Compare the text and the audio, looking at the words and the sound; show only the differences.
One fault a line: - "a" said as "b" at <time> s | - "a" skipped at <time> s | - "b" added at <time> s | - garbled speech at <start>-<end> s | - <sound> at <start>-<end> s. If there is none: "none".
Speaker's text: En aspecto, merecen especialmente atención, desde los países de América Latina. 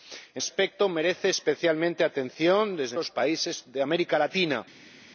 none